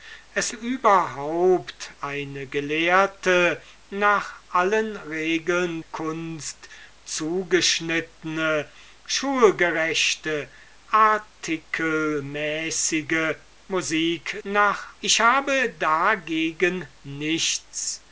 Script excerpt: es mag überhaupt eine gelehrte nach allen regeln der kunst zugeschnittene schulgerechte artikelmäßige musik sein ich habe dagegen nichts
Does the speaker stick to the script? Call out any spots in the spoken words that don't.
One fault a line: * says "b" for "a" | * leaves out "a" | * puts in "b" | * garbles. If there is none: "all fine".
* leaves out "mag"
* leaves out "der"
* says "nach" for "sein"